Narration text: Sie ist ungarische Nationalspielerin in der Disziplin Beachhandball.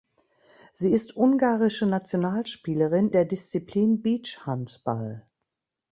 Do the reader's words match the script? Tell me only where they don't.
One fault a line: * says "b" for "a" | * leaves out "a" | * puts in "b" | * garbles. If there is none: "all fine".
* leaves out "in"